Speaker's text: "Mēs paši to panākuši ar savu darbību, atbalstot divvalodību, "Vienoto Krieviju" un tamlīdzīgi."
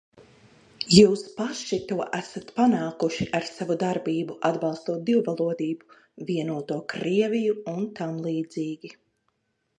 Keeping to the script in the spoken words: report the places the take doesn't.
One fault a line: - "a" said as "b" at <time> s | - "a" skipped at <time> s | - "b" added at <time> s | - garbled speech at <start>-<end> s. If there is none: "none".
- "Mēs" said as "Jūs" at 0.9 s
- "esat" added at 2.2 s